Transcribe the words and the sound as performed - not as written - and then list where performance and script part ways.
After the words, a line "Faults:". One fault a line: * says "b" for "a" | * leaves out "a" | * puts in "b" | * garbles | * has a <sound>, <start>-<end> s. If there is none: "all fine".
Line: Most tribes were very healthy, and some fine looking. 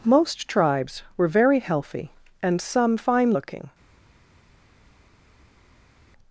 Most tribes were very healthy, and some fine looking.
Faults:
all fine